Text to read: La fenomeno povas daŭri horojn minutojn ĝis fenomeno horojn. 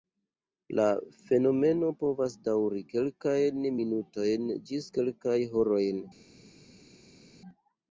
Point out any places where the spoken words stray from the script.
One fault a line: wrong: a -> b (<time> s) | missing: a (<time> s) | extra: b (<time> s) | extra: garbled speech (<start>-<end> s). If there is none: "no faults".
wrong: horojn -> kelkajn (2.9 s)
wrong: fenomeno -> kelkajn (5.0 s)